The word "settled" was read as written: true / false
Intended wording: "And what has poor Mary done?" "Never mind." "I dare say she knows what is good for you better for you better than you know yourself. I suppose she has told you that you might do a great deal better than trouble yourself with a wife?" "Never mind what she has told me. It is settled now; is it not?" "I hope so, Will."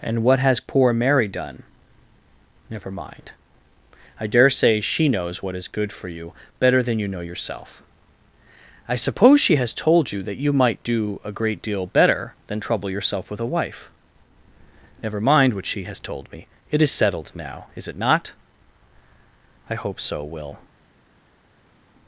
true